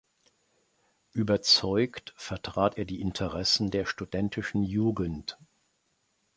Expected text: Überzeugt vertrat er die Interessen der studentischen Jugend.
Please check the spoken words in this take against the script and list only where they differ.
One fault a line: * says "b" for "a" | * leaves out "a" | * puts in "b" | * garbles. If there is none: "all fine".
all fine